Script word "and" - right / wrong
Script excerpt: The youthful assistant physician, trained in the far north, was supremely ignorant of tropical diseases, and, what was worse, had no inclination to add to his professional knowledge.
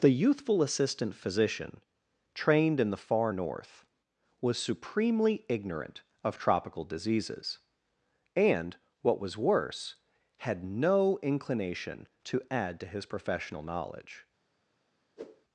right